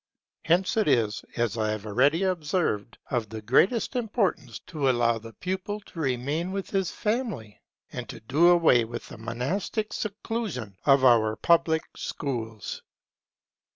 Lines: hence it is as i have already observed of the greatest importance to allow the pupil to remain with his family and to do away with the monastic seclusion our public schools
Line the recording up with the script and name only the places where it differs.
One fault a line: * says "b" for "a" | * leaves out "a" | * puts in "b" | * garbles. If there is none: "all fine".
* puts in "of"